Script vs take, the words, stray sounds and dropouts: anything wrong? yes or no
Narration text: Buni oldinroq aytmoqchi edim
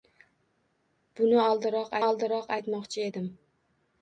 yes